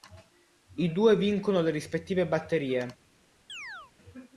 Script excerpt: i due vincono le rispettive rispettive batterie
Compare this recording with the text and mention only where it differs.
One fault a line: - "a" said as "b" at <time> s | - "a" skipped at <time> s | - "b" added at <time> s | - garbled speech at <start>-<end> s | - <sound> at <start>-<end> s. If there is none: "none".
- "rispettive" skipped at 2.3 s
- chirp at 3.5-3.9 s